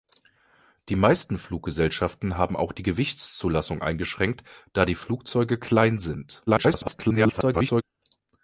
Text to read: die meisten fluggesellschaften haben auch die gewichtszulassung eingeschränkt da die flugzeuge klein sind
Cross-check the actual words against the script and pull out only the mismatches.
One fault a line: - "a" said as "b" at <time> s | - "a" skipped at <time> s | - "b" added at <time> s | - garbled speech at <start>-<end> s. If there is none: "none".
- garbled speech at 6.5-7.8 s